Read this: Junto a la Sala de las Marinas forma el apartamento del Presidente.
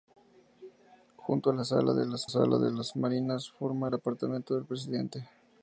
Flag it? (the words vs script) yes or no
yes